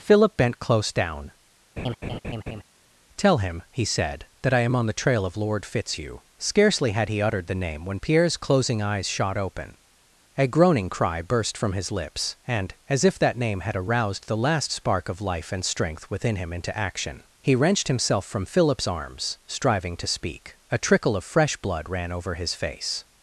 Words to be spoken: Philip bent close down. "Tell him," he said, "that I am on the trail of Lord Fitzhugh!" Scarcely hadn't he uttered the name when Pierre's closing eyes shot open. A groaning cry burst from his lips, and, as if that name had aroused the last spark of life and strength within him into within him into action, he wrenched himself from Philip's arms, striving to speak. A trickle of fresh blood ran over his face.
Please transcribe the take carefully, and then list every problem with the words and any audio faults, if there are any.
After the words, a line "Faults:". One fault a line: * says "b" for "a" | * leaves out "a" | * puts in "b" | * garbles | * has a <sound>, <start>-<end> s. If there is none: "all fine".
Philip bent close down. "Tell him," he said, "that I am on the trail of Lord Fitzhugh!" Scarcely had he uttered the name when Pierre's closing eyes shot open. A groaning cry burst from his lips, and, as if that name had aroused the last spark of life and strength within him into action, he wrenched himself from Philip's arms, striving to speak. A trickle of fresh blood ran over his face.
Faults:
* has a laugh, 1.8-2.6 s
* says "had" for "hadn't"
* leaves out "within him into"